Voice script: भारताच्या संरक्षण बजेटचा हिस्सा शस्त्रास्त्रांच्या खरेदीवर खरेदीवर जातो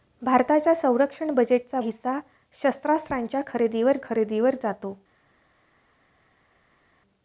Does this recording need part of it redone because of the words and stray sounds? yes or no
no